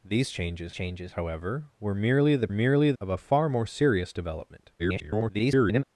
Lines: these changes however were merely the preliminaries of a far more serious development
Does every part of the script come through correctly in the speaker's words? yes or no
no